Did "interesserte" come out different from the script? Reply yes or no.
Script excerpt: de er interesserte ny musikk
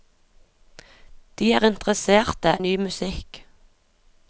no